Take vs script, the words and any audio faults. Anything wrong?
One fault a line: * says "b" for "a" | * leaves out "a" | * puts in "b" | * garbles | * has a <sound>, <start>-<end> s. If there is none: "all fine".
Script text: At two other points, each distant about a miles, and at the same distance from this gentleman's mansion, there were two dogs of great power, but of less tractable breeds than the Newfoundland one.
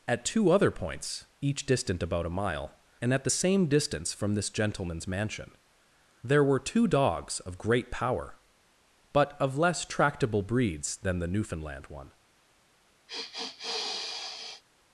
* says "mile" for "miles"
* has a sniff, 13.1-14.6 s